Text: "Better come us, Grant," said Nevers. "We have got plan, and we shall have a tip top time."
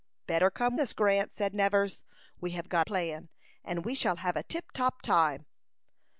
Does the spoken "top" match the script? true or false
true